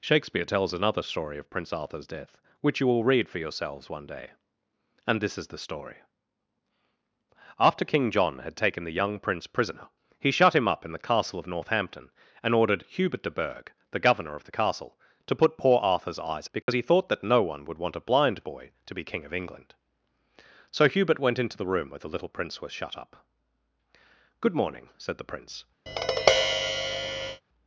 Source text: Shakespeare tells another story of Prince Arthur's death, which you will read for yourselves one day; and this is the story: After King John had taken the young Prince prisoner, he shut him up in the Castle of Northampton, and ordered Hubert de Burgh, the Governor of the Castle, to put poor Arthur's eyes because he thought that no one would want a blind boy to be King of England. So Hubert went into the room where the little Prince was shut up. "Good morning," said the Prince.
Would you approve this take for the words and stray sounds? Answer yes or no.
no